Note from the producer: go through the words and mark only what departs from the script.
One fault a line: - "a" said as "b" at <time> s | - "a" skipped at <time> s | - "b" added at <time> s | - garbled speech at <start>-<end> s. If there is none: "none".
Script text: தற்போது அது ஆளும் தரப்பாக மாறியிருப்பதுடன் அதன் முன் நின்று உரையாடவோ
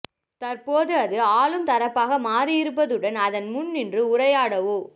none